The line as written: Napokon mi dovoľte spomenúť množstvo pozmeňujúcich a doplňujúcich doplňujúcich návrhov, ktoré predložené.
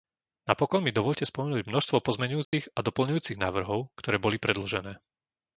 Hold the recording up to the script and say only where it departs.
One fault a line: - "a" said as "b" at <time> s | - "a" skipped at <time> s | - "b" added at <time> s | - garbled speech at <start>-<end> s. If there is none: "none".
- "doplňujúcich" skipped at 3.4 s
- "boli" added at 4.2 s